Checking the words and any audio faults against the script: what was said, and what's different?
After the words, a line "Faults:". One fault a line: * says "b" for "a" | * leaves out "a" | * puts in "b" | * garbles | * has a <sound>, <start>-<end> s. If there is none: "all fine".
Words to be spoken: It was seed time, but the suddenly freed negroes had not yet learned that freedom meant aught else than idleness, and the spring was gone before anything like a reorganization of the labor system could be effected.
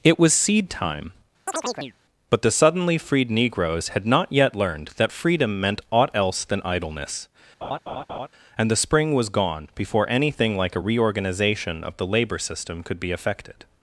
It was seed time, but the suddenly freed negroes had not yet learned that freedom meant aught else than idleness, and the spring was gone before anything like a reorganization of the labor system could be effected.
Faults:
* has a chirp, 1.5-1.9 s
* has a laugh, 7.6-8.3 s